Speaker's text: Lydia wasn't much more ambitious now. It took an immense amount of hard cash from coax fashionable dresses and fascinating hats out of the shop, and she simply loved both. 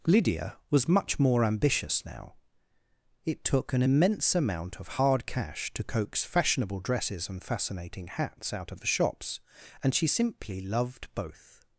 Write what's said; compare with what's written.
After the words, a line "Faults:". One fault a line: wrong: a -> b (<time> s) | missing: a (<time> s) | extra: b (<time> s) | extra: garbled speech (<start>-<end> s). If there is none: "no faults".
Lydia was much more ambitious now. It took an immense amount of hard cash to coax fashionable dresses and fascinating hats out of the shops, and she simply loved both.
Faults:
wrong: wasn't -> was (0.7 s)
wrong: from -> to (5.7 s)
wrong: shop -> shops (8.9 s)